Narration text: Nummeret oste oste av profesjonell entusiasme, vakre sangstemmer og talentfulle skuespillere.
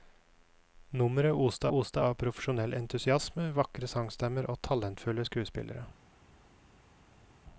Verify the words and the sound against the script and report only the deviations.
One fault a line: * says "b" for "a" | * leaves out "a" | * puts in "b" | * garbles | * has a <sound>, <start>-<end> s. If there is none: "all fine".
all fine